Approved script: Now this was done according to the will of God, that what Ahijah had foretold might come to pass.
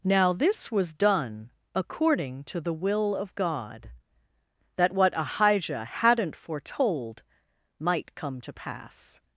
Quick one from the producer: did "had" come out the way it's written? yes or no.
no